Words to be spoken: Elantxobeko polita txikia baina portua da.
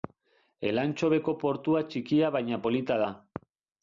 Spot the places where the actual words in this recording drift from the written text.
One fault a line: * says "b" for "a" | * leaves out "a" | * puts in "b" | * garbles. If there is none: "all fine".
* says "portua" for "polita"
* says "polita" for "portua"